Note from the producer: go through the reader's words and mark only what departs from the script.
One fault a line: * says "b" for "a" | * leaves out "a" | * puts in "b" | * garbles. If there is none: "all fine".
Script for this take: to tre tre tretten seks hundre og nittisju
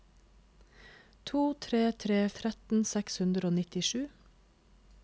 all fine